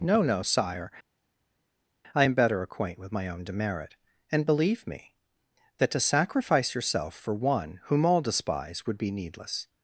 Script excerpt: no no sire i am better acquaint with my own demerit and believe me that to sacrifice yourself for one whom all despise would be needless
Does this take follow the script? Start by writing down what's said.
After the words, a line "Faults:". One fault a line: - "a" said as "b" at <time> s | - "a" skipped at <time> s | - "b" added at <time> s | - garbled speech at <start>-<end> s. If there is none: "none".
no no sire i am better acquaint with my own demerit and believe me that to sacrifice yourself for one whom all despise would be needless
Faults:
none